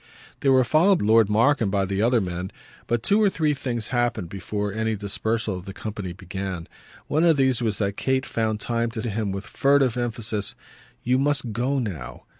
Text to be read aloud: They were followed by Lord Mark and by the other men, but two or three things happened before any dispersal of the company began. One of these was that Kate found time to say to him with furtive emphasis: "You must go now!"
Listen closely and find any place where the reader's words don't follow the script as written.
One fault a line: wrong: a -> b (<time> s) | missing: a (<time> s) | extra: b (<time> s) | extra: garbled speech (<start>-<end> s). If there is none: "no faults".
missing: by (1.0 s)
missing: say (9.0 s)